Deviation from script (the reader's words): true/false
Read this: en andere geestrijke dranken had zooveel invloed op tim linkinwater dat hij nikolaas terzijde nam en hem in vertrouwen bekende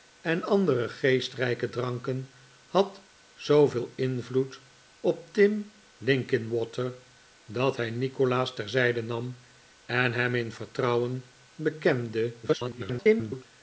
true